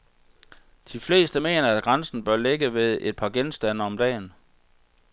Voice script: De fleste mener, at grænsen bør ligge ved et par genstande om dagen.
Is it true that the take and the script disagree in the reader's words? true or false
false